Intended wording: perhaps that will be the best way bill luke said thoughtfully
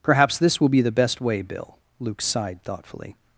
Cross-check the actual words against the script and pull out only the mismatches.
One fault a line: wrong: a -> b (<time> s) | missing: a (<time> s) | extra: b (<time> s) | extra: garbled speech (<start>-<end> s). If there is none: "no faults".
wrong: that -> this (0.4 s)
wrong: said -> sighed (2.2 s)